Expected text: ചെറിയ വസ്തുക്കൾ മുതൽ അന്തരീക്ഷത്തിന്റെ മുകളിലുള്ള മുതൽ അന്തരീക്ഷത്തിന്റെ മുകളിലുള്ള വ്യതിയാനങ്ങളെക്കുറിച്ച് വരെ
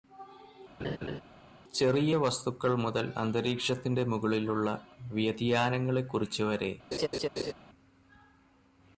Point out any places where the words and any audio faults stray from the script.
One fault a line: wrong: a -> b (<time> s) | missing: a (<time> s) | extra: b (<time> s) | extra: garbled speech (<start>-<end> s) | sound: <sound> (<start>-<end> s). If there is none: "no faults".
sound: laugh (0.8-1.2 s)
missing: മുതൽ അന്തരീക്ഷത്തിന്റെ മുകളിലുള്ള (4.7 s)
sound: laugh (6.9-7.5 s)